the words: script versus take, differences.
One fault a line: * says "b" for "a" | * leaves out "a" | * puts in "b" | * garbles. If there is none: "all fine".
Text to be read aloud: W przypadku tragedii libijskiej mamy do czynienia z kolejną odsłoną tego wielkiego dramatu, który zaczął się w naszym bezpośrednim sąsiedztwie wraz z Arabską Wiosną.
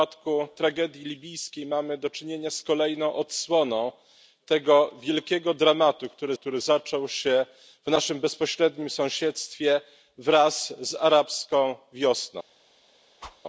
* puts in "który"